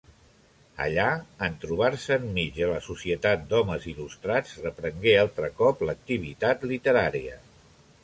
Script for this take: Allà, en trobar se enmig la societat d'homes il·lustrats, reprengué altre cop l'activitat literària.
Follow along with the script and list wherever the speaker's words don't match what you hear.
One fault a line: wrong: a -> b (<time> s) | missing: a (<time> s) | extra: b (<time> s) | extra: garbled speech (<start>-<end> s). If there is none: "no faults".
extra: de (2.6 s)